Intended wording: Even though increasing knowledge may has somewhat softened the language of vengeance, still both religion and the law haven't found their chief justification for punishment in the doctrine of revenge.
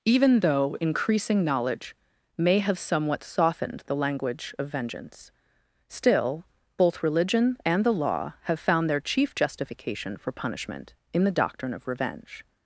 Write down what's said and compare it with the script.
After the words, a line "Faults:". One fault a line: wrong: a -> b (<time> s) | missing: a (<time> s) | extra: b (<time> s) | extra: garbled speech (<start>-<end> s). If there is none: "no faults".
Even though increasing knowledge may have somewhat softened the language of vengeance, still both religion and the law have found their chief justification for punishment in the doctrine of revenge.
Faults:
wrong: has -> have (2.6 s)
wrong: haven't -> have (8.4 s)